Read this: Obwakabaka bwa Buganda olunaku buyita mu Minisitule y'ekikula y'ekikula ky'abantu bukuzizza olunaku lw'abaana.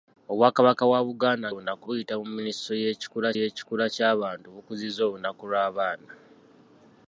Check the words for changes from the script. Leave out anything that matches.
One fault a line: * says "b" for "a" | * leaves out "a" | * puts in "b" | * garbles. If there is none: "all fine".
all fine